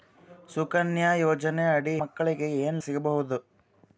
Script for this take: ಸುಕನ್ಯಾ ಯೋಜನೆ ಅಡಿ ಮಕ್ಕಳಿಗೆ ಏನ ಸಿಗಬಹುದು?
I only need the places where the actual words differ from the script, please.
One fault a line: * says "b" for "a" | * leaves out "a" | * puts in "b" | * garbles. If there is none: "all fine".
all fine